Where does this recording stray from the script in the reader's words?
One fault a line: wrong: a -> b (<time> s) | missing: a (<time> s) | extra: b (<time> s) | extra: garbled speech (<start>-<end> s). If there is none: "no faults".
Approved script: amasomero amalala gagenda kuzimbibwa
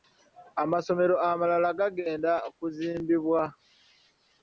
no faults